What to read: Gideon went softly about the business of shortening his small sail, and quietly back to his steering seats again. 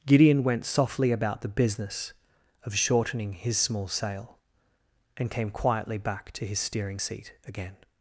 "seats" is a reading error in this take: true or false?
true